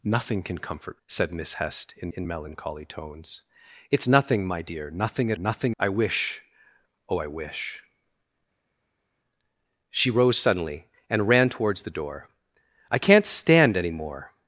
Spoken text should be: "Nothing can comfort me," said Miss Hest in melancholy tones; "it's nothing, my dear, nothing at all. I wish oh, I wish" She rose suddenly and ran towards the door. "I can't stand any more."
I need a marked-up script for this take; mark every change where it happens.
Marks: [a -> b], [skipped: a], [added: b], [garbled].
"Nothing can comfort [skipped: me,"] said Miss Hest in [added: in] melancholy tones; "it's nothing, my dear, nothing at [all. -> nothing] I wish oh, I wish" She rose suddenly and ran towards the door. "I can't stand any more."